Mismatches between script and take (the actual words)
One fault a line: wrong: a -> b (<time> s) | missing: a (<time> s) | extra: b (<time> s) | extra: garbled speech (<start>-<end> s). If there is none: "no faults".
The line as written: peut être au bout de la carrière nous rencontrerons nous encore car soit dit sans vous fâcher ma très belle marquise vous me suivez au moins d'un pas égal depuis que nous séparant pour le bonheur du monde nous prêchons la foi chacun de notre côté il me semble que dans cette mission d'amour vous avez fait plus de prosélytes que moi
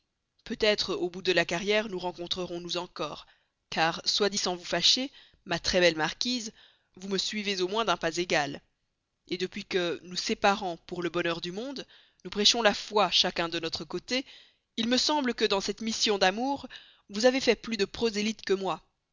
no faults